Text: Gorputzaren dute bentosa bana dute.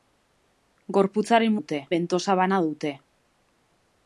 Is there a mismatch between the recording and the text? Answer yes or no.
no